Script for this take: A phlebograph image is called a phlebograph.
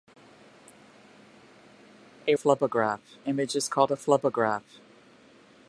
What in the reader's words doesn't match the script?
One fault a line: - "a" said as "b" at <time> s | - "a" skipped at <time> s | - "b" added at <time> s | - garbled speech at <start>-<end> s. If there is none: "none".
none